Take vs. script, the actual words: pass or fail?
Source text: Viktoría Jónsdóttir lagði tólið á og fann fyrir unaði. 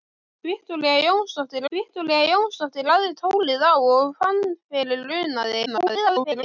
fail